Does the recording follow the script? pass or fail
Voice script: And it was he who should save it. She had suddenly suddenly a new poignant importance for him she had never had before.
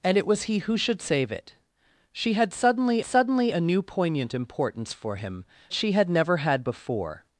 pass